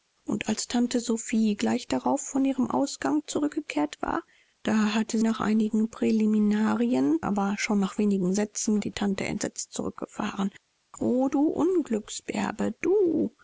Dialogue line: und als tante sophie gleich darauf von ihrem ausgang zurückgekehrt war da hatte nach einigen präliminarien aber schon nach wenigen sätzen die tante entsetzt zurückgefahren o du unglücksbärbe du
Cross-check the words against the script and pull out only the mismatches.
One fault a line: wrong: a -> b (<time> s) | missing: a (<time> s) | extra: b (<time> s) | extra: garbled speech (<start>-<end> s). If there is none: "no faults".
no faults